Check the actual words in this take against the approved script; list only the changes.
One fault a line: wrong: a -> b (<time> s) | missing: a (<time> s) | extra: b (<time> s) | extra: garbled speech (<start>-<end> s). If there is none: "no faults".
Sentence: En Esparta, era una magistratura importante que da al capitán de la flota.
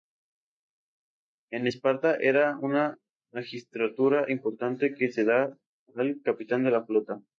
extra: se (5.1 s)